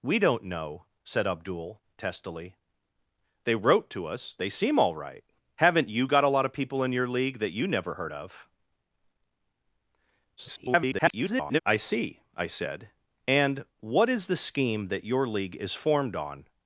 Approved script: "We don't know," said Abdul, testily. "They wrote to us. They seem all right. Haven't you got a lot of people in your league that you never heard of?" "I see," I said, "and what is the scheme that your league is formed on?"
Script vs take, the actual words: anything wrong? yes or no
yes